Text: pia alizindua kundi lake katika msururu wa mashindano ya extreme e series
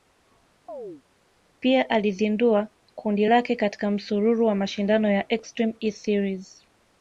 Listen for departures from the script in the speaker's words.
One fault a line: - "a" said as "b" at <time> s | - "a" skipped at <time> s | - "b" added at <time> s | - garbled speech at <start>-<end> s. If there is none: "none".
none